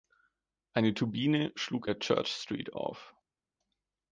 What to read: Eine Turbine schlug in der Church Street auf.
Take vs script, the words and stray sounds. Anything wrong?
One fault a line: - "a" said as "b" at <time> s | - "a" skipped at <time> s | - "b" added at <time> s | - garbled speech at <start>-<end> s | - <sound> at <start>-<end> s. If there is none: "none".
- "in" skipped at 1.9 s